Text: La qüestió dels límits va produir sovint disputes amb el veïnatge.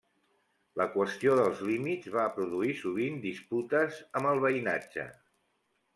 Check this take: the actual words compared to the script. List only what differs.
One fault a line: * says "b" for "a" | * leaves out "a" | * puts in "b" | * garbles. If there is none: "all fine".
all fine